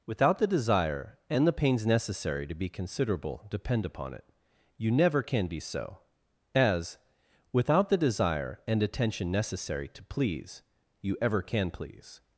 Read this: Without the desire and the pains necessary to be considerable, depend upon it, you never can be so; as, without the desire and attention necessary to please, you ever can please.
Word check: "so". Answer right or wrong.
right